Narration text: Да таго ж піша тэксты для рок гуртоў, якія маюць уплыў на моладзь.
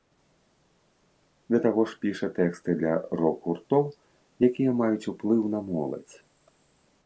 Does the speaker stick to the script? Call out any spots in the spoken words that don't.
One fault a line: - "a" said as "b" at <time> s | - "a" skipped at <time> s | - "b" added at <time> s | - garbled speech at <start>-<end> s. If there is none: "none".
none